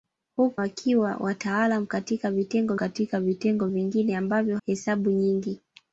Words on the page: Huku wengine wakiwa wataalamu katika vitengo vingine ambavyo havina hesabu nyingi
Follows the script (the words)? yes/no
no